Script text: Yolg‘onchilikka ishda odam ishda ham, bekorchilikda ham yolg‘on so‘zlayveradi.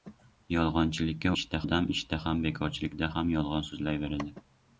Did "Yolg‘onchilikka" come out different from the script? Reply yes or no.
no